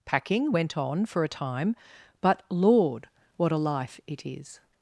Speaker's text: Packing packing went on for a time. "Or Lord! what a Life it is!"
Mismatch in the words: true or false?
true